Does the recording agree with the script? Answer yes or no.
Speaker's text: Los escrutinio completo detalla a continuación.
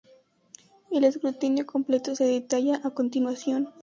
no